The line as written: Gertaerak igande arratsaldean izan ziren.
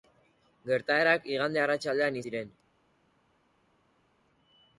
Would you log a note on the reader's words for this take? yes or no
yes